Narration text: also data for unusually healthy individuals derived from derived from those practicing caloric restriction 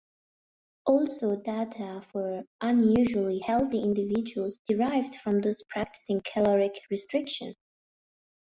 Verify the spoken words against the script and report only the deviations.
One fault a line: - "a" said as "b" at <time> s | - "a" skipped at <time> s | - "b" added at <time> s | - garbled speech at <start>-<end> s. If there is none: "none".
- "derived from" skipped at 5.4 s